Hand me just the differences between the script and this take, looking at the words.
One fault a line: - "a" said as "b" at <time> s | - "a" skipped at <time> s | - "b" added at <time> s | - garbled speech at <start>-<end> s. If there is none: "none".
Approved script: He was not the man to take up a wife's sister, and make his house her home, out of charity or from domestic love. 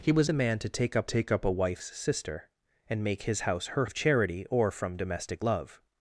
- "not" skipped at 0.3 s
- "take up" added at 1.0 s
- "home out" skipped at 3.9 s